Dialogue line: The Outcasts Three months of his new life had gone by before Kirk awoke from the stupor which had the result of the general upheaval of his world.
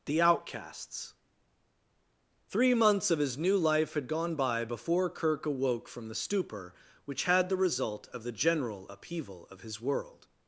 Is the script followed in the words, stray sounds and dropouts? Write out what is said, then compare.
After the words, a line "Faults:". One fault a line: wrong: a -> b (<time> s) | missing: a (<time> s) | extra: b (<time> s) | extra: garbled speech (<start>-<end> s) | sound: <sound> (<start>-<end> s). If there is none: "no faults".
The Outcasts Three months of his new life had gone by before Kirk awoke from the stupor which had the result of the general upheaval of his world.
Faults:
no faults